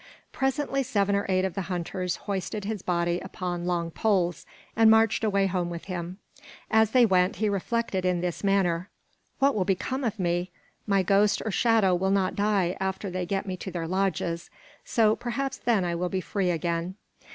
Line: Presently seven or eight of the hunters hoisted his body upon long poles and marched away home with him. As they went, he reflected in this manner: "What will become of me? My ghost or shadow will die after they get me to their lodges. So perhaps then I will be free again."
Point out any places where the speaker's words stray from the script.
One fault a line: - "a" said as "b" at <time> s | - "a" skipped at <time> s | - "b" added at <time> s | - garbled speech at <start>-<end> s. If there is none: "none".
- "not" added at 12.1 s